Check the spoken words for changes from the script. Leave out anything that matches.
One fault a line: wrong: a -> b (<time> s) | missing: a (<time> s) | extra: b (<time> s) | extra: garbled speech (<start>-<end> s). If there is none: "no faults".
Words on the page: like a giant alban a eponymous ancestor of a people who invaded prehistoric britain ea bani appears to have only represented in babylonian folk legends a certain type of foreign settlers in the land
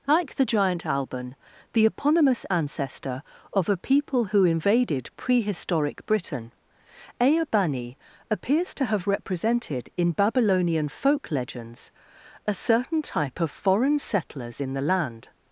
wrong: a -> the (0.3 s)
wrong: a -> the (1.7 s)
missing: only (9.1 s)